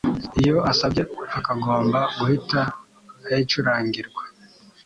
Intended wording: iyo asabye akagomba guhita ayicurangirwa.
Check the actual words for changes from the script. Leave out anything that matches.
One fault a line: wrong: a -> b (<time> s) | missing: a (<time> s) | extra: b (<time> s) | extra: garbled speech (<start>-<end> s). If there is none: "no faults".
no faults